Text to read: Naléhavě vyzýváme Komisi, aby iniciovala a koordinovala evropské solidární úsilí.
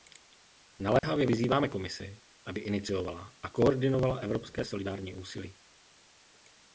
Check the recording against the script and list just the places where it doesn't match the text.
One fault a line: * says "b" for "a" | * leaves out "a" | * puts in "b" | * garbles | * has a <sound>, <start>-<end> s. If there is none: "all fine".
* has a dropout, 1.0-1.0 s